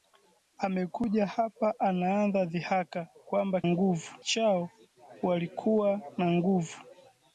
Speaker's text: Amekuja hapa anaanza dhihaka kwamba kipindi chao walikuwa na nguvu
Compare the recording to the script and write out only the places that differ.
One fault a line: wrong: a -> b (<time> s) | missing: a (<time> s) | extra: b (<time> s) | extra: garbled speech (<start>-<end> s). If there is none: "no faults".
wrong: kipindi -> nguvu (3.7 s)